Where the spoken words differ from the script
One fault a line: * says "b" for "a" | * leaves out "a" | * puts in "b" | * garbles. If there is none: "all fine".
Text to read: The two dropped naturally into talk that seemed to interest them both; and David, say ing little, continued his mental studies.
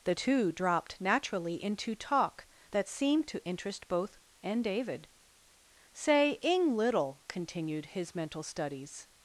* leaves out "them"